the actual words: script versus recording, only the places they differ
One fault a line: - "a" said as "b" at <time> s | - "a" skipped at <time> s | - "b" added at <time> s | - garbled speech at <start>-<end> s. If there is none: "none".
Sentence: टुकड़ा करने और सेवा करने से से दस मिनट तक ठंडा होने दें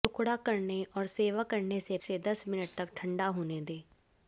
none